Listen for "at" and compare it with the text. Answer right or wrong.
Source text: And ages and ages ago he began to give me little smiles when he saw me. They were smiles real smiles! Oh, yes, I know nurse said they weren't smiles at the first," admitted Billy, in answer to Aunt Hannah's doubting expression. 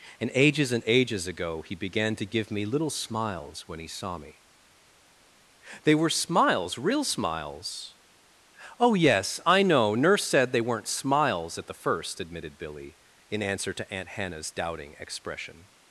right